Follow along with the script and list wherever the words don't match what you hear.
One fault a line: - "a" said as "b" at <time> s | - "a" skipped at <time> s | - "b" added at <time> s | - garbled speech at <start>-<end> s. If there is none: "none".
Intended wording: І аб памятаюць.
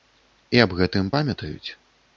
- "гэтым" added at 0.8 s